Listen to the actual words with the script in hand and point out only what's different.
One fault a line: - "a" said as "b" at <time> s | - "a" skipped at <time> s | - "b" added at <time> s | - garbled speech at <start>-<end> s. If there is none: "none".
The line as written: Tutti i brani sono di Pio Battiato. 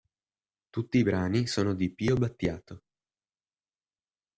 none